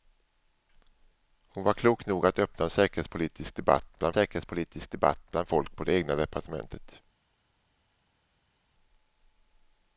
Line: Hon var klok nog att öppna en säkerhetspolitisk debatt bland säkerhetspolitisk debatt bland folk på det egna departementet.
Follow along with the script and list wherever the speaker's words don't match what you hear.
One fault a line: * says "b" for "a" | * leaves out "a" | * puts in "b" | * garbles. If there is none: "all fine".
all fine